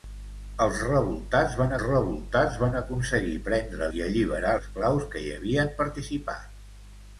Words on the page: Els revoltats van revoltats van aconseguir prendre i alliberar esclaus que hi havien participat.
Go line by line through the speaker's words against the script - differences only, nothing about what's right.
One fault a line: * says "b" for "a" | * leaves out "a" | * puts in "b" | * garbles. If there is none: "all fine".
all fine